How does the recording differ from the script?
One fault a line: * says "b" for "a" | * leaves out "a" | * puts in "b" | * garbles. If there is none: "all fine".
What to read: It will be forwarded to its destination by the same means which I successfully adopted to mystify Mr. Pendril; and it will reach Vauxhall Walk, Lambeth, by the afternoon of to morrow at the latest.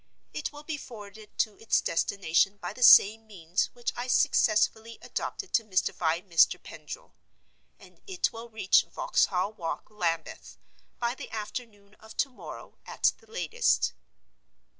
all fine